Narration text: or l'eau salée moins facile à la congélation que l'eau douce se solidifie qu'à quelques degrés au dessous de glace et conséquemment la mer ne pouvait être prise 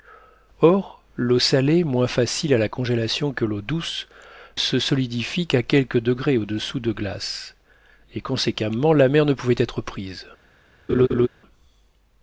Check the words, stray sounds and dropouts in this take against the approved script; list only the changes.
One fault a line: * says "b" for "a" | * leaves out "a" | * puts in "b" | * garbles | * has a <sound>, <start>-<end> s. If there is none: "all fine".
* has a laugh, 10.9-11.3 s